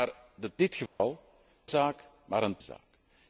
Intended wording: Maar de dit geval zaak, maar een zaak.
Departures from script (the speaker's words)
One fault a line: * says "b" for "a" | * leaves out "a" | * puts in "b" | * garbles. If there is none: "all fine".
all fine